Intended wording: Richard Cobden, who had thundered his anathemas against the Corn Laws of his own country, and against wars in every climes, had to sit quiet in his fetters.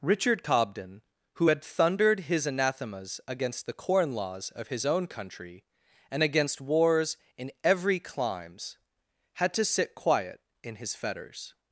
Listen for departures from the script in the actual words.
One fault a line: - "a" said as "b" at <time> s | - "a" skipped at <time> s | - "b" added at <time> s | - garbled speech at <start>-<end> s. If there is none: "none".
none